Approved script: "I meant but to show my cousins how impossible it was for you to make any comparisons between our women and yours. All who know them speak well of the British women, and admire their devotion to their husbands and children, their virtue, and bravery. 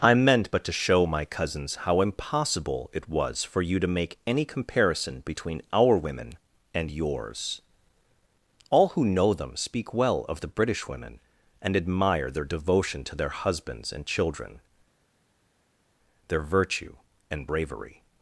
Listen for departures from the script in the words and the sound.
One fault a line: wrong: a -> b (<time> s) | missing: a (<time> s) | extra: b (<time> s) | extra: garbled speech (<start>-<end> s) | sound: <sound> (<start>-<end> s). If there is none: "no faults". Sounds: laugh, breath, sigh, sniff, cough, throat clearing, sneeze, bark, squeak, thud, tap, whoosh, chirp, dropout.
wrong: comparisons -> comparison (4.5 s)